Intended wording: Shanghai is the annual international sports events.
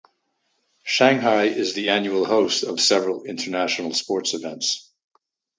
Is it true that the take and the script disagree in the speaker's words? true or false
true